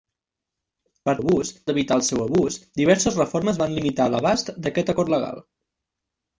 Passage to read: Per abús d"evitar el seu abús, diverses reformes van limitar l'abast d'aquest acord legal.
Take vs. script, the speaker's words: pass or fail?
pass